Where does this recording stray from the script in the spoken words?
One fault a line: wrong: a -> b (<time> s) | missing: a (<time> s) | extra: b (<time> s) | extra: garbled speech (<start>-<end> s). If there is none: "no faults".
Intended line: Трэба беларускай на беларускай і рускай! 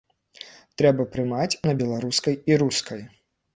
wrong: беларускай -> прымаць (1.2 s)